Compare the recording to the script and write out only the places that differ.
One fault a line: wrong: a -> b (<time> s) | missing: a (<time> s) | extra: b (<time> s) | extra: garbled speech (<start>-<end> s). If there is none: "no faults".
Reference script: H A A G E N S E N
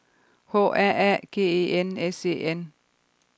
no faults